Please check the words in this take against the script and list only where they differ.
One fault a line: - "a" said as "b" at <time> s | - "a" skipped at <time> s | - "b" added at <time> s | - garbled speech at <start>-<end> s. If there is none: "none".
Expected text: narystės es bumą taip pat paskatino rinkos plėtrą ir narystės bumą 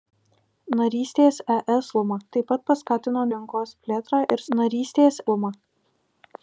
none